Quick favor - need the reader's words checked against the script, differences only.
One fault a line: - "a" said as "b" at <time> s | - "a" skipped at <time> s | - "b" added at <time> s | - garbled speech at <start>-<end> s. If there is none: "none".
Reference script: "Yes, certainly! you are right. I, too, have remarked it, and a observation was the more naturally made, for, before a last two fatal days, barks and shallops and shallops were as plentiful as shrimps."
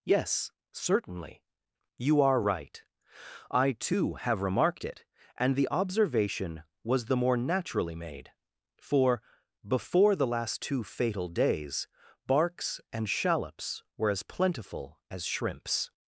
- "a" said as "the" at 5.5 s
- "a" said as "the" at 10.2 s
- "and shallops" skipped at 13.8 s